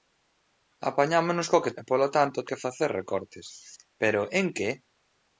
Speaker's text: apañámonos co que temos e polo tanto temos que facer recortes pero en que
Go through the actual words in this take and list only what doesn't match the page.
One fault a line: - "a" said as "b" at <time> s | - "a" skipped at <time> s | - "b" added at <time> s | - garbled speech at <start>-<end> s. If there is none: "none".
- "temos" skipped at 1.8 s
- "temos" skipped at 2.4 s